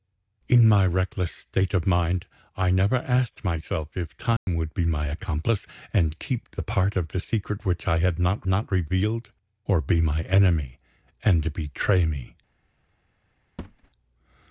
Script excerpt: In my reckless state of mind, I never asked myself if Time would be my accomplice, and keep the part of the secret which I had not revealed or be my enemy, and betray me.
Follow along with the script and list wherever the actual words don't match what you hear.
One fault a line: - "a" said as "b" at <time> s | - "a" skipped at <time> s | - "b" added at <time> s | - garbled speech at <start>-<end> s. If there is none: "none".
- "not" added at 8.4 s